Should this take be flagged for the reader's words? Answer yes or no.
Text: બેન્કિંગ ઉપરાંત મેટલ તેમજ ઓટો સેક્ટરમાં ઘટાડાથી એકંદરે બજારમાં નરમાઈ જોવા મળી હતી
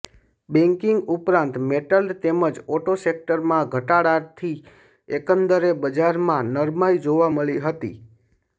no